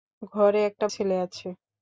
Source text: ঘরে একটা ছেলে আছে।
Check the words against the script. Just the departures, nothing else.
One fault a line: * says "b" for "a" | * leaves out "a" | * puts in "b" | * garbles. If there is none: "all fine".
all fine